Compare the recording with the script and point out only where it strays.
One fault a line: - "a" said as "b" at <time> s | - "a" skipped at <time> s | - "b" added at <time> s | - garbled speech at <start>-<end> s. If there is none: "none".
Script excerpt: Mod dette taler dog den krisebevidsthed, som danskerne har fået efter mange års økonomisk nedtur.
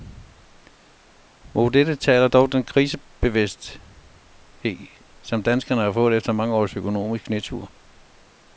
none